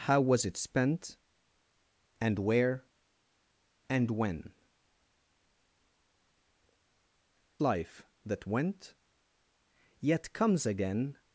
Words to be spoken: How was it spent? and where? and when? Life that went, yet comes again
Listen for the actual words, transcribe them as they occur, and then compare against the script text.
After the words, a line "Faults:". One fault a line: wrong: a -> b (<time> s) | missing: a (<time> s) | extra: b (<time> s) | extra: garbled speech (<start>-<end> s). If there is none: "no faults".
How was it spent? and where? and when? Life that went, yet comes again
Faults:
no faults